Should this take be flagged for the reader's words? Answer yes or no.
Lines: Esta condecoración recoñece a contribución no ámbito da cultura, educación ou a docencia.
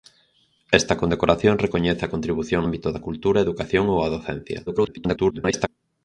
yes